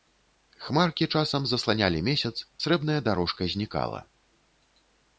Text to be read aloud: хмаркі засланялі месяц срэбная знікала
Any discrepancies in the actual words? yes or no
yes